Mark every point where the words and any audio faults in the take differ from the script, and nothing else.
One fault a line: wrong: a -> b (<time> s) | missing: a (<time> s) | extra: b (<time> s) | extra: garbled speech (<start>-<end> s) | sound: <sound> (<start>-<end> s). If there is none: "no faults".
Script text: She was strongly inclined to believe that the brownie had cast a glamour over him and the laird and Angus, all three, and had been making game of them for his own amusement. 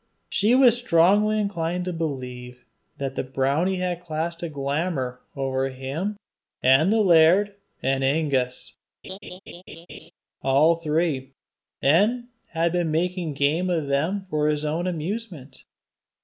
sound: laugh (9.0-10.1 s)